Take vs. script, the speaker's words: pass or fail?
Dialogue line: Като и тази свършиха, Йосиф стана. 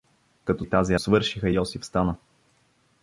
pass